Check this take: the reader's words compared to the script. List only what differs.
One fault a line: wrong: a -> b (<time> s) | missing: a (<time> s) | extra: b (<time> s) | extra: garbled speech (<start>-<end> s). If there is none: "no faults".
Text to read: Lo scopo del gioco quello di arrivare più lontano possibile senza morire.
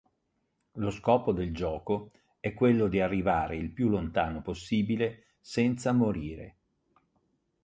extra: è (2.4 s)
extra: il (3.5 s)